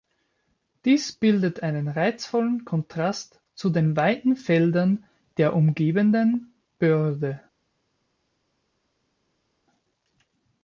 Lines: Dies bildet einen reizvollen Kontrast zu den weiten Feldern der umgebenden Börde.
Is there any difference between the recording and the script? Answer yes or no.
no